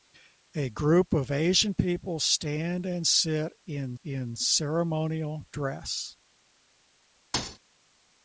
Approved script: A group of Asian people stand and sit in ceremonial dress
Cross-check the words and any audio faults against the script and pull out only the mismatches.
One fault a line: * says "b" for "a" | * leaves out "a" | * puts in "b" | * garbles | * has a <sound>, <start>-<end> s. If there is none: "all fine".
* puts in "in"
* has a thud, 7.3-7.6 s